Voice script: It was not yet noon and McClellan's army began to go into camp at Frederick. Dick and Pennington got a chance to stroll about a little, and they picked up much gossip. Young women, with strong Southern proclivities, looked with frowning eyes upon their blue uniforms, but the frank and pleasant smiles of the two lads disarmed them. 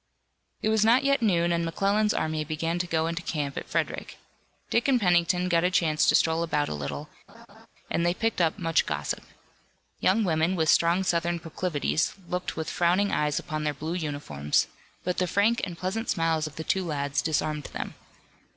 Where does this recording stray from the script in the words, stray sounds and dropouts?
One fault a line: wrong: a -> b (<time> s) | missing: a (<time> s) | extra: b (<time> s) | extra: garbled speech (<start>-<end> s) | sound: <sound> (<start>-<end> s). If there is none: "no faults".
sound: laugh (7.3-7.7 s)